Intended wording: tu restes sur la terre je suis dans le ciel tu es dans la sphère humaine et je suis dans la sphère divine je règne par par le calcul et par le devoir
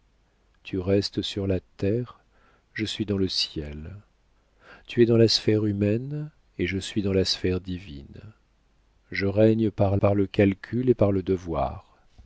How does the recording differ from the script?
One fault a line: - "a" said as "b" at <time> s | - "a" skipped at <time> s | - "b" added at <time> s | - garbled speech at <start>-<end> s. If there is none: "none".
none